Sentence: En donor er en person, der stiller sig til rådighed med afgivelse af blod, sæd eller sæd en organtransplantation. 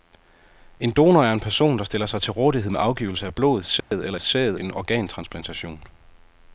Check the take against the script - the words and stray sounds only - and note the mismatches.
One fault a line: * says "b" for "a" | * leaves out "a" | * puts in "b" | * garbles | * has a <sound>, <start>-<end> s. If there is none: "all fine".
* has a dropout, 3.8-3.9 s